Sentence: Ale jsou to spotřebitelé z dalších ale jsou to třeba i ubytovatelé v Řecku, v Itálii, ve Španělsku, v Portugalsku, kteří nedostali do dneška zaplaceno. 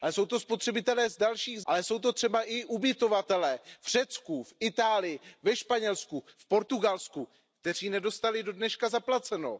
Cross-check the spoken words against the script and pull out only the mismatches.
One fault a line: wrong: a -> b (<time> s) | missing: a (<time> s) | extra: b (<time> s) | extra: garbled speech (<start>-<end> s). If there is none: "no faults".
no faults